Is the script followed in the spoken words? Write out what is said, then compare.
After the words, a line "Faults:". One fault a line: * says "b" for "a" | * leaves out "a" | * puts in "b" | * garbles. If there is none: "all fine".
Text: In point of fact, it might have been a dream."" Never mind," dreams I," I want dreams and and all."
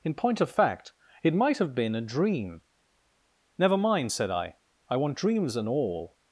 In point of fact, it might have been a dream."" Never mind," said I," I want dreams and all."
Faults:
* says "said" for "dreams"
* leaves out "and"